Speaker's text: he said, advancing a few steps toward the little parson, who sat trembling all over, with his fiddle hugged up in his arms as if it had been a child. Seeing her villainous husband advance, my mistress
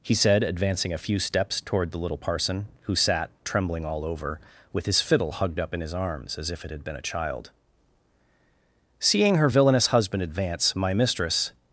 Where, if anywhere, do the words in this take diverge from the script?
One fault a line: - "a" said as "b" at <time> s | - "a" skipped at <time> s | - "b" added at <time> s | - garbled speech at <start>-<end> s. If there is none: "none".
none